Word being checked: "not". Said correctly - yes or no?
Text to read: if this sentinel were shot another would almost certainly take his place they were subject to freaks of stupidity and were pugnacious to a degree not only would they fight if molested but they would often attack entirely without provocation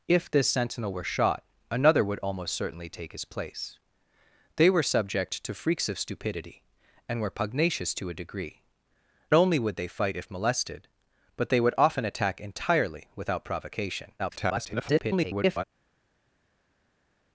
no